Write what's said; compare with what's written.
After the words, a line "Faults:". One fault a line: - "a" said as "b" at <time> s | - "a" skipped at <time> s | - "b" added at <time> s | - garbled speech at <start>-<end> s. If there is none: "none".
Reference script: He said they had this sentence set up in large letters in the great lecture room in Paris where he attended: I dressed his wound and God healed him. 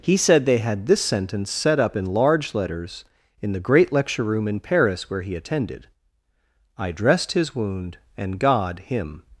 He said they had this sentence set up in large letters in the great lecture room in Paris where he attended: I dressed his wound and God him.
Faults:
- "healed" skipped at 8.8 s